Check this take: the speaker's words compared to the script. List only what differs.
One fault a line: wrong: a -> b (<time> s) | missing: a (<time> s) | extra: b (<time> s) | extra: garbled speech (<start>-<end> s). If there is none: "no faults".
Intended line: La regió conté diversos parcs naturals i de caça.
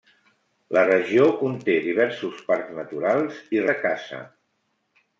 no faults